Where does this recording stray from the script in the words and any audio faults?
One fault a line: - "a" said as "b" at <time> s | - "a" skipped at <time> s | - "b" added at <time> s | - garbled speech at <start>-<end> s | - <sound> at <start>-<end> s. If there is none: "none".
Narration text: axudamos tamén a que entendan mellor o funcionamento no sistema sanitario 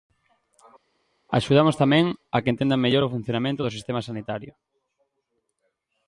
- "no" said as "do" at 3.6 s